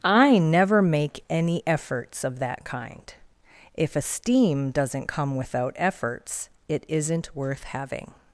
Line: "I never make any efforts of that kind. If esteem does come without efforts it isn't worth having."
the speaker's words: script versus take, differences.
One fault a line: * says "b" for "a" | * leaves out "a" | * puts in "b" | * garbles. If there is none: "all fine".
* says "doesn't" for "does"